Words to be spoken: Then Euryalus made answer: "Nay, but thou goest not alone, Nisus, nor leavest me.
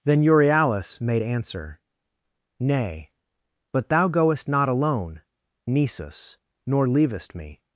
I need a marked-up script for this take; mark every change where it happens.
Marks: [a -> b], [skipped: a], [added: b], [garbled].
Then Euryalus made answer: "Nay, but thou goest not alone, Nisus, nor leavest me.